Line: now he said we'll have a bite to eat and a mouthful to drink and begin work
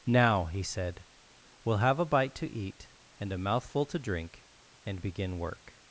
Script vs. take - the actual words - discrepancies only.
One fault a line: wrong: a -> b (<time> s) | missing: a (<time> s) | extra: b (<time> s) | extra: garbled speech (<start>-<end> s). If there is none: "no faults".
no faults